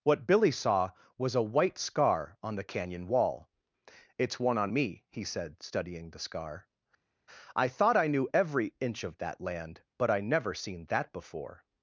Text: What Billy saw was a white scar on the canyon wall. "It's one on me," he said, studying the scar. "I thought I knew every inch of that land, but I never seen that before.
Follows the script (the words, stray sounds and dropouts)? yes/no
yes